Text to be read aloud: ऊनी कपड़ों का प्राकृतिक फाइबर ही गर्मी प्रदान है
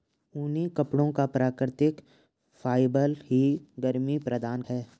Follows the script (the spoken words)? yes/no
yes